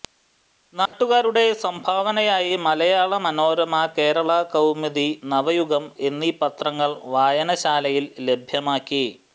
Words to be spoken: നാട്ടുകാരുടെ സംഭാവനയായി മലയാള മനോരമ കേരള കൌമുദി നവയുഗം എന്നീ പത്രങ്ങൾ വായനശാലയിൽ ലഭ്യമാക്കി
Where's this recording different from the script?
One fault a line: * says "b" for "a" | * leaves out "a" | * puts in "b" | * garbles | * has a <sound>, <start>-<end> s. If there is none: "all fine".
* has a dropout, 0.9-0.9 s